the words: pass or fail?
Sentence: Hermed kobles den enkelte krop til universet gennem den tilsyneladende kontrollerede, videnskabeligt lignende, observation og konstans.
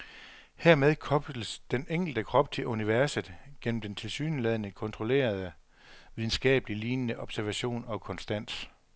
pass